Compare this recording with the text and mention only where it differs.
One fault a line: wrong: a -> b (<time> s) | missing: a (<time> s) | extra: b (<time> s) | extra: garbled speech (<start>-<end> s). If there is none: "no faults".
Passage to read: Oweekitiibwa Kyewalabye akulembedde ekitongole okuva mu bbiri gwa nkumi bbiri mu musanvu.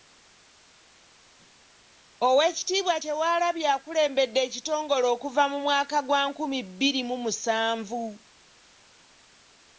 wrong: bbiri -> mwaka (5.6 s)